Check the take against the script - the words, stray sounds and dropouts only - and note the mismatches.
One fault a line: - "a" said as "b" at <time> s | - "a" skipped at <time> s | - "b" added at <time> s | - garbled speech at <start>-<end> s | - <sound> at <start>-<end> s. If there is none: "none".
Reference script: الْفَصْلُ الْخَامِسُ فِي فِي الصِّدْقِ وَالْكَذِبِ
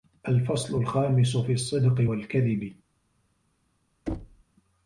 - "فِي" skipped at 1.5 s
- thud at 4.1-4.4 s